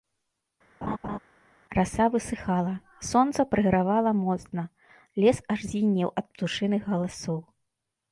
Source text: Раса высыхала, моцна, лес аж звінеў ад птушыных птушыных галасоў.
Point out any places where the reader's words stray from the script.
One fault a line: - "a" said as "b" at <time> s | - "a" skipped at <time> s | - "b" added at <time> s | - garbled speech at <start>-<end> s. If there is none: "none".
- "сонца прыгравала" added at 3.1 s
- "птушыных" skipped at 6.8 s